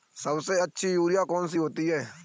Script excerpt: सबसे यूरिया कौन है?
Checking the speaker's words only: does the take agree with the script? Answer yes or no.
no